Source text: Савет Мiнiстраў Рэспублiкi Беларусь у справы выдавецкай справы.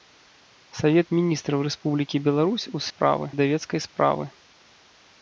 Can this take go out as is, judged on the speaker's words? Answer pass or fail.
pass